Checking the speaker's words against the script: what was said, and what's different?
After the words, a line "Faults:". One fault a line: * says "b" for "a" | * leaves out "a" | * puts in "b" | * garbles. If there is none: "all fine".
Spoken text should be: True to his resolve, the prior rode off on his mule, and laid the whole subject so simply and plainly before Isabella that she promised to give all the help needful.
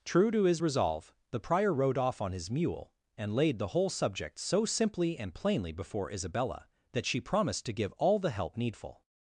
True to his resolve, the prior rode off on his mule, and laid the whole subject so simply and plainly before Isabella that she promised to give all the help needful.
Faults:
all fine